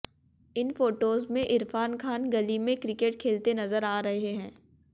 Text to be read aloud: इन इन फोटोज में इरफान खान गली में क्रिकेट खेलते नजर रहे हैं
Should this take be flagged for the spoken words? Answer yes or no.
yes